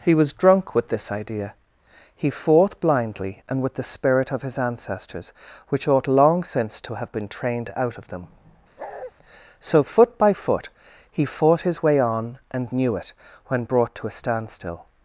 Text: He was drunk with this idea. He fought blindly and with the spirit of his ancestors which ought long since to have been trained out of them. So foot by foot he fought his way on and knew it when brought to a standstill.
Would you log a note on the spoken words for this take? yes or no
no